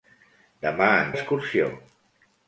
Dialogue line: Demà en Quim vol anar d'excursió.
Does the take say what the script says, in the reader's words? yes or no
no